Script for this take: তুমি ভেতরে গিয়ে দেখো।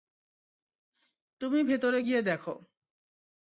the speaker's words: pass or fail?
pass